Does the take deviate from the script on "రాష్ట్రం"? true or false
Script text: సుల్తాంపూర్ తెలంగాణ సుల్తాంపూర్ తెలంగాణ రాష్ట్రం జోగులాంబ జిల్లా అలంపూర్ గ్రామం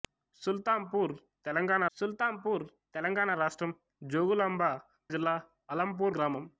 false